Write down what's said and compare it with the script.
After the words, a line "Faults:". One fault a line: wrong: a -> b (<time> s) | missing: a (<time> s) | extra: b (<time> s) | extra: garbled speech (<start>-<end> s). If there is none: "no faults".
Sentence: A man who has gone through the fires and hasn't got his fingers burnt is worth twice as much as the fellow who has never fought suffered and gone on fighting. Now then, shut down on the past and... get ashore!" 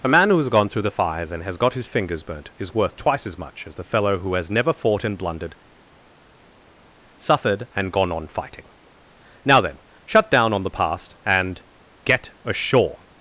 A man who has gone through the fires and has got his fingers burnt is worth twice as much as the fellow who has never fought and blundered, suffered and gone on fighting. Now then, shut down on the past and... get ashore!"
Faults:
wrong: hasn't -> has (1.4 s)
extra: and blundered (5.0 s)